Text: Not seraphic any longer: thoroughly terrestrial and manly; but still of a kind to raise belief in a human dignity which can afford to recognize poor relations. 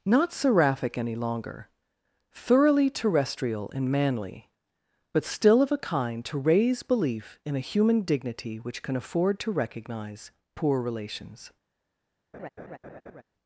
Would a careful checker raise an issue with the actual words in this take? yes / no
no